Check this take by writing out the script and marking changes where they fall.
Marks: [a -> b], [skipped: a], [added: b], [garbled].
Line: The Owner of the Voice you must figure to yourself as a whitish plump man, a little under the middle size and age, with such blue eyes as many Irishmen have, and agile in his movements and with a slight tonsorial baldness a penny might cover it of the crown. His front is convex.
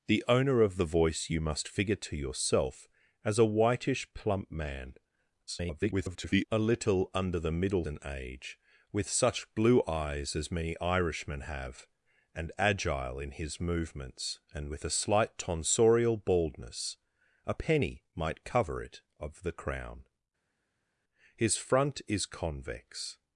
The Owner of the Voice you must figure to yourself as a whitish plump man, [garbled] a little under the middle [skipped: size] and age, with such blue eyes as many Irishmen have, and agile in his movements and with a slight tonsorial baldness a penny might cover it of the crown. His front is convex.